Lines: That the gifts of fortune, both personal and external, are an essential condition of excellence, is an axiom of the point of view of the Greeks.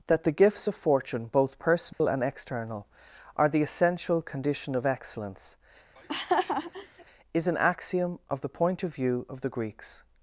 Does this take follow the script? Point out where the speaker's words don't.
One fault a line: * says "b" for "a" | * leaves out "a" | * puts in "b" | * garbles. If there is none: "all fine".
* says "the" for "an"